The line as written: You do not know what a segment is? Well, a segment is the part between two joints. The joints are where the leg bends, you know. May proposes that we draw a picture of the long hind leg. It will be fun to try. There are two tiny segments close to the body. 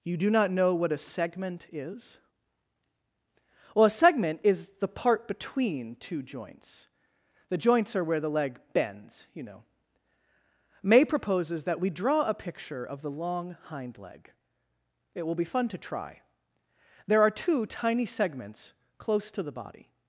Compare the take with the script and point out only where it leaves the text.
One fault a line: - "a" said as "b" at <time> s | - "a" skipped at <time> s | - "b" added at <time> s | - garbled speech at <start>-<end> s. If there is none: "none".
none